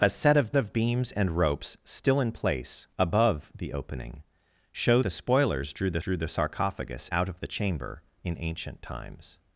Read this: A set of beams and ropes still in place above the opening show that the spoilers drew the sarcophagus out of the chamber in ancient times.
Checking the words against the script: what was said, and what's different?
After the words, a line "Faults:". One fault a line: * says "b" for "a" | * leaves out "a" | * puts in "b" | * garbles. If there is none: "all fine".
A set of of beams and ropes still in place above the opening show the spoilers drew the drew the sarcophagus out of the chamber in ancient times.
Faults:
* puts in "of"
* leaves out "that"
* puts in "drew the"